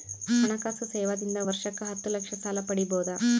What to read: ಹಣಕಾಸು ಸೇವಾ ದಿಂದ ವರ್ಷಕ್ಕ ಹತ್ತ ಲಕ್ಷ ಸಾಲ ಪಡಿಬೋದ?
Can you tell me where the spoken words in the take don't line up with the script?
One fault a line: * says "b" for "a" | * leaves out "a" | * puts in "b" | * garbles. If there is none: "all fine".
all fine